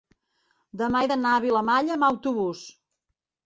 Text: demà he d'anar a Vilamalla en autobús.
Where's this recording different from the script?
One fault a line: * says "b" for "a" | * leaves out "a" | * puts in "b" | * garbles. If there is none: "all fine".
* says "amb" for "en"